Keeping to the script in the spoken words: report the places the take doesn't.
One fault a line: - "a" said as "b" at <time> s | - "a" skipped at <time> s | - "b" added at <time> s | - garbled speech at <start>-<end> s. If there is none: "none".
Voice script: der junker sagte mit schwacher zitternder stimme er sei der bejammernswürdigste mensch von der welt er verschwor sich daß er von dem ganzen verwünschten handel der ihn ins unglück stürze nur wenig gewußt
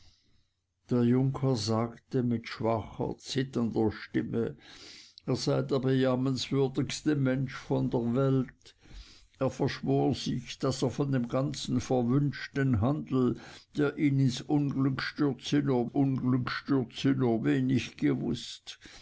- "unglück stürze nur" added at 15.8 s